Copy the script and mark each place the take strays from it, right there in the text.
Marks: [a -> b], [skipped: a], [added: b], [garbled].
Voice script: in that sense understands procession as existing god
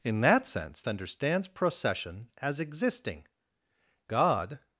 in that sense understands procession as existing god